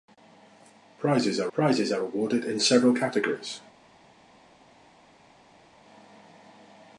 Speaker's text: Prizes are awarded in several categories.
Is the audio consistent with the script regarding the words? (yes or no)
no